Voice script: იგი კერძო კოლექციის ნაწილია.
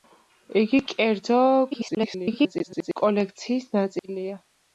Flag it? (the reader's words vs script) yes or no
yes